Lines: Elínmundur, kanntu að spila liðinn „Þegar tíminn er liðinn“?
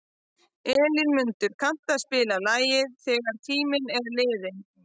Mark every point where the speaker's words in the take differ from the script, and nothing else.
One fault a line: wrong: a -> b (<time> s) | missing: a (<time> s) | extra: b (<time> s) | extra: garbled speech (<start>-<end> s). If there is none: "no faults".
wrong: liðinn -> lagið (2.5 s)